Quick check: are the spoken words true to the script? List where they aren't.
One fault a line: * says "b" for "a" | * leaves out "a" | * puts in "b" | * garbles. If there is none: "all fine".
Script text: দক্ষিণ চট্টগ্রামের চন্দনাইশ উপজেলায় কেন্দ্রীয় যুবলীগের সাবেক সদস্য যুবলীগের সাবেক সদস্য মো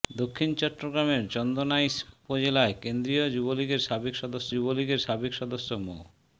all fine